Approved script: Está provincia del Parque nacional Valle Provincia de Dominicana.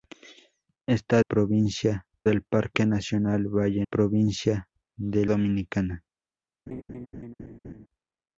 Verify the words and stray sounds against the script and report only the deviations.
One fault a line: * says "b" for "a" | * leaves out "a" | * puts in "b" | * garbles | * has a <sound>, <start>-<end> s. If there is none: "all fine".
* has a laugh, 6.7-7.9 s